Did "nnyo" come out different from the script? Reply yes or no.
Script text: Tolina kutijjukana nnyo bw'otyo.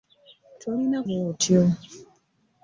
yes